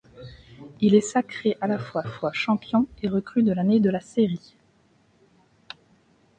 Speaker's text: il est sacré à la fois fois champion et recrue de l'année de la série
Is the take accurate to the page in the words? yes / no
yes